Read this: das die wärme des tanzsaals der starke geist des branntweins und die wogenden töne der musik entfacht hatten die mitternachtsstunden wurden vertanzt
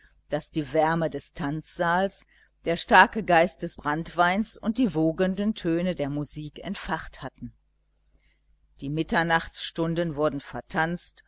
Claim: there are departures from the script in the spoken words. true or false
false